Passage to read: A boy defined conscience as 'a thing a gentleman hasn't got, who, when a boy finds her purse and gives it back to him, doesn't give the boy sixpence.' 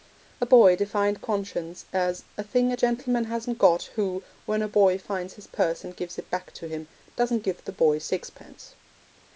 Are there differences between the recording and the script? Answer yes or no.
yes